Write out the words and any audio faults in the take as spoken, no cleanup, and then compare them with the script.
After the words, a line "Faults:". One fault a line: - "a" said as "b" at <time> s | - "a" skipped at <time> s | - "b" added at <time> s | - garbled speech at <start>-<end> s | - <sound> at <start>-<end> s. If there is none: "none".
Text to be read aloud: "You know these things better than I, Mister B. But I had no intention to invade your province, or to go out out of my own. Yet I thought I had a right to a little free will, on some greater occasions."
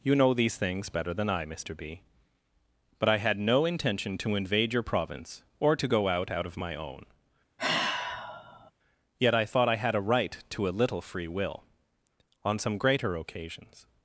"You know these things better than I, Mister B. But I had no intention to invade your province, or to go out out of my own. Yet I thought I had a right to a little free will, on some greater occasions."
Faults:
- sigh at 7.6-8.7 s